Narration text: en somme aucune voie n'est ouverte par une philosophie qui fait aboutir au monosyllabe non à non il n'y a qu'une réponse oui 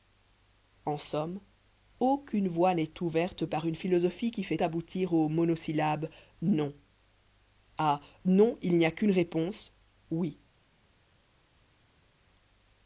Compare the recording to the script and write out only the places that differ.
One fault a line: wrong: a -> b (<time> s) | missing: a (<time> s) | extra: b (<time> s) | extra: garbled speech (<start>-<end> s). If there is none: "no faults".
no faults